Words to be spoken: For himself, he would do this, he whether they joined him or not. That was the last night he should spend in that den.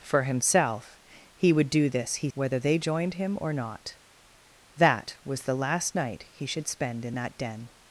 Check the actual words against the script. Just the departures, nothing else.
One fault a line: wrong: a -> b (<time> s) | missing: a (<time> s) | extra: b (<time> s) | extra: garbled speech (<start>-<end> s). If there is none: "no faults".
no faults